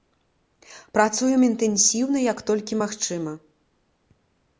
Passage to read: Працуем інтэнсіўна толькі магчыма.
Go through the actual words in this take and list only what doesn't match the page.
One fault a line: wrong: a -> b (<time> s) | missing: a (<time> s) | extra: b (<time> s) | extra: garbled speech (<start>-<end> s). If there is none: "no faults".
extra: як (2.3 s)